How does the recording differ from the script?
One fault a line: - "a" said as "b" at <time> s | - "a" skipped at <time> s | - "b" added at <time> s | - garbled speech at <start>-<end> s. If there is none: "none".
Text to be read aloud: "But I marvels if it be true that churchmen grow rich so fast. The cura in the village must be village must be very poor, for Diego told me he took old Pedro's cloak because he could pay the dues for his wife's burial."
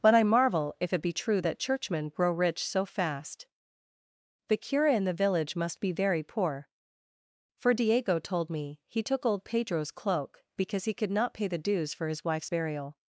- "marvels" said as "marvel" at 0.2 s
- "village must be" skipped at 5.9 s
- "not" added at 11.1 s